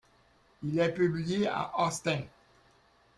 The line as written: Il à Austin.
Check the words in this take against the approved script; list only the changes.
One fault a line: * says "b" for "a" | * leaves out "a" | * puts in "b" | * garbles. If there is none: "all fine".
* puts in "est publié"